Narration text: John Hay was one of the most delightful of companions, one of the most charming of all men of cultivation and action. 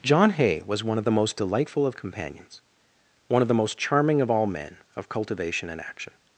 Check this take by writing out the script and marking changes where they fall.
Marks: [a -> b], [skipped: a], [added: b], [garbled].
John Hay was one of the most delightful of companions, one of the most charming of all men of cultivation and action.